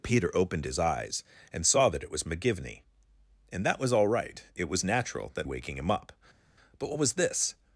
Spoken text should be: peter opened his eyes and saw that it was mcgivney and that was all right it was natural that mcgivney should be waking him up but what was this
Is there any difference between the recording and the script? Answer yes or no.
yes